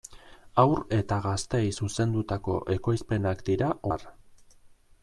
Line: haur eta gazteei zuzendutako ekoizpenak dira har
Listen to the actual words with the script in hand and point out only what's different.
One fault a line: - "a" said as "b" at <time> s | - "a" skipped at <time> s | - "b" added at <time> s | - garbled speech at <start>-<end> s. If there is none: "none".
none